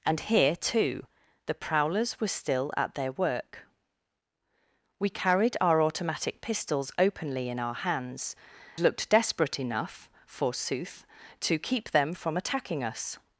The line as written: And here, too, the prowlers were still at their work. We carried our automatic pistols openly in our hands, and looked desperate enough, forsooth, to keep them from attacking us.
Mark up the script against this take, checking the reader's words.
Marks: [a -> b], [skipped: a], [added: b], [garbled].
And here, too, the prowlers were still at their work. We carried our automatic pistols openly in our hands, [skipped: and] looked desperate enough, forsooth, to keep them from attacking us.